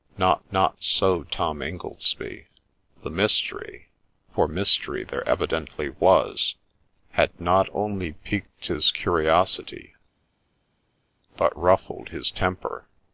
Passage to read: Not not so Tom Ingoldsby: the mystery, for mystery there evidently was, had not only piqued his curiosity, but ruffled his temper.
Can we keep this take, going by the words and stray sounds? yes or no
yes